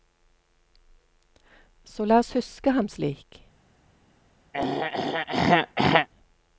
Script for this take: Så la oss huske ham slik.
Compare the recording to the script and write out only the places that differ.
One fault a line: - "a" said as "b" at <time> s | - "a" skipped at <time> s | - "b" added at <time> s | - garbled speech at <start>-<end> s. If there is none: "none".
none